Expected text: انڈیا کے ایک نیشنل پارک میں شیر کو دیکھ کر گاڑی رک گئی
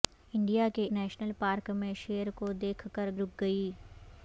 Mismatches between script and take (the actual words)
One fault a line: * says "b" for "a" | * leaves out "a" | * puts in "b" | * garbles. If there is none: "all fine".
* leaves out "ایک"
* leaves out "گاڑی"